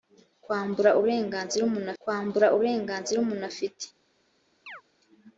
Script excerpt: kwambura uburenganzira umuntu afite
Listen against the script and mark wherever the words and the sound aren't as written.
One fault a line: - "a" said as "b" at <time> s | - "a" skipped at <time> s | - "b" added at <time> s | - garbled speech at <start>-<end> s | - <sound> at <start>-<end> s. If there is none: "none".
- "kwambura uburenganzira umuntu" added at 2.0 s
- chirp at 4.7-4.8 s